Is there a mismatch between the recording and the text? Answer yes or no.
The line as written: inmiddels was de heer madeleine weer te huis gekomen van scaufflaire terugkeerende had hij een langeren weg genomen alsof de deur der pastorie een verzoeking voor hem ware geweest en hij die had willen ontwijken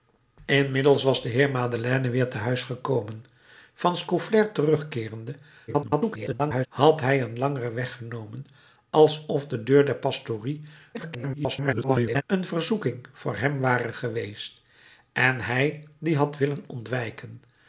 yes